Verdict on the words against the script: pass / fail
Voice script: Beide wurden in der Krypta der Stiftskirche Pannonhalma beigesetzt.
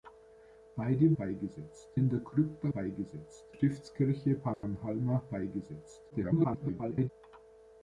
fail